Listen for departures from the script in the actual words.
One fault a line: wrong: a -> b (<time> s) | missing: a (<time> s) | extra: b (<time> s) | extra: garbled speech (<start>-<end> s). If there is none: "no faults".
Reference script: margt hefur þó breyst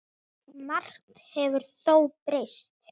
no faults